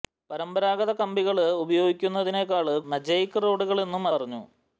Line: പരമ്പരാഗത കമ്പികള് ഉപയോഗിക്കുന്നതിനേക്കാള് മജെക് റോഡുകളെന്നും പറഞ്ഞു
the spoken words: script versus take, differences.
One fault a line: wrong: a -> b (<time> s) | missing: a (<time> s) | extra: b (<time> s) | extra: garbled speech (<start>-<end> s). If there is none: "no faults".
no faults